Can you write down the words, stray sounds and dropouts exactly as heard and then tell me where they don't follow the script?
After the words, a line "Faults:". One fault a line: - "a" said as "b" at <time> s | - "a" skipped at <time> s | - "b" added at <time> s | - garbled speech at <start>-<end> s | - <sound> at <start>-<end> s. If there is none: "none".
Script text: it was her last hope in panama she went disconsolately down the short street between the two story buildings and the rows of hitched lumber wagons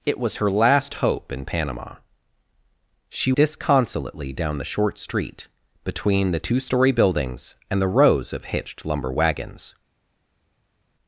it was her last hope in panama she disconsolately down the short street between the two story buildings and the rows of hitched lumber wagons
Faults:
- "went" skipped at 3.3 s